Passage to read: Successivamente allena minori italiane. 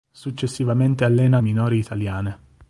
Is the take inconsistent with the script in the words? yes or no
no